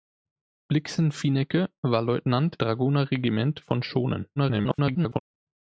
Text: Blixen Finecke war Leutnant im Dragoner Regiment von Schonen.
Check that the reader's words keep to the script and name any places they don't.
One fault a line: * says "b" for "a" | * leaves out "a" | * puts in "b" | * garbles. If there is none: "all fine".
* leaves out "im"
* garbles